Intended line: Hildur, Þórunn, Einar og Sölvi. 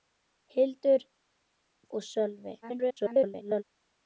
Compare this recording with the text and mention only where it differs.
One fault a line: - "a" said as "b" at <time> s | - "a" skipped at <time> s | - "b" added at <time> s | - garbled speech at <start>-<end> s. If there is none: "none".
- "Þórunn Einar" skipped at 1.0 s
- garbled speech at 2.6-3.6 s